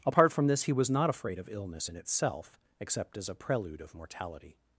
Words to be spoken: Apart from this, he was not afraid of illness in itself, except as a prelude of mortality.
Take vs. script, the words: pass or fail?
pass